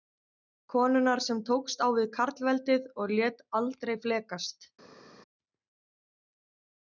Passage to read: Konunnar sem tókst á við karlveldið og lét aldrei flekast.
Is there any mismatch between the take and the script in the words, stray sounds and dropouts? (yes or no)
no